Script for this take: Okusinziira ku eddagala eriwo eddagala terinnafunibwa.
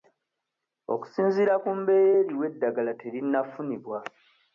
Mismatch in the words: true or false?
true